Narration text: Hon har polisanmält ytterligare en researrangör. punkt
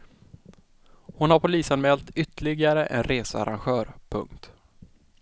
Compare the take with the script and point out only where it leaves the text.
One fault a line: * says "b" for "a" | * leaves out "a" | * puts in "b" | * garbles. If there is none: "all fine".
all fine